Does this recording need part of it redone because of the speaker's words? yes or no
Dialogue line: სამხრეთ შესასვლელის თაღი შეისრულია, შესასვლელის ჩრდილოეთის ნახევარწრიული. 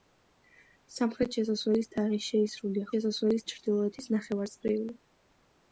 no